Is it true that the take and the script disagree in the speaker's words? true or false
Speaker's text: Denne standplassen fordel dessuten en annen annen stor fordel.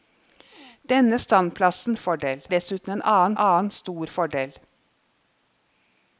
false